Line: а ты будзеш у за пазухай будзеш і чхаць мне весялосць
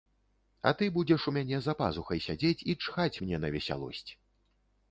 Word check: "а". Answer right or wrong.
right